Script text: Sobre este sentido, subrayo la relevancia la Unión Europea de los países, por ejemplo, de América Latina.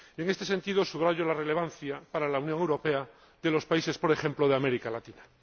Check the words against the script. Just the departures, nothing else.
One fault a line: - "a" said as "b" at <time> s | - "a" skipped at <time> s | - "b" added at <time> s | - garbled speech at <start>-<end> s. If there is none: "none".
- "Sobre" said as "En" at 0.2 s
- "para" added at 2.1 s